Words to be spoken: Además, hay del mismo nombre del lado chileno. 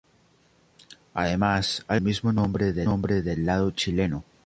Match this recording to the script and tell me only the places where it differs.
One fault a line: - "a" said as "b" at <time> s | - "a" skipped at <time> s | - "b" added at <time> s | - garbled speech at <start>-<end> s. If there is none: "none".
none